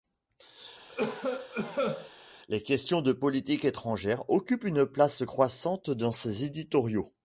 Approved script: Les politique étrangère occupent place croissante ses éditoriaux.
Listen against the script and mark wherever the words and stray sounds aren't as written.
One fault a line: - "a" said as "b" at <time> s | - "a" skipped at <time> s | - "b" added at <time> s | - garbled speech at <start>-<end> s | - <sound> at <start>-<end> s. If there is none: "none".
- cough at 0.9-2.1 s
- "questions de" added at 2.6 s
- "une" added at 4.6 s
- "dans" added at 5.9 s